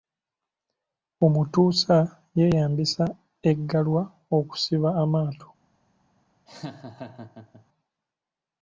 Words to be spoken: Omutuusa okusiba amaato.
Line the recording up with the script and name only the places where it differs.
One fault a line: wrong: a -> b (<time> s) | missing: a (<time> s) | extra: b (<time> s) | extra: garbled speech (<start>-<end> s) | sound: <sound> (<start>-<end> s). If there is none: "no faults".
extra: yeeyambisa Eggalwa (2.4 s)
sound: laugh (6.5-7.7 s)